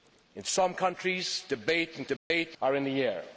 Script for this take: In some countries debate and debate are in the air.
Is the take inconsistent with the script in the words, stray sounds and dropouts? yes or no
yes